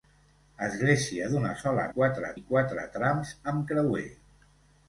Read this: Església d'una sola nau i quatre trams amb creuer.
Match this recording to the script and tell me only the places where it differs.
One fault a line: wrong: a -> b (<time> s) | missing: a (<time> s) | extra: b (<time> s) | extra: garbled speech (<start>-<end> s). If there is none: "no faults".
wrong: nau -> quatre (2.0 s)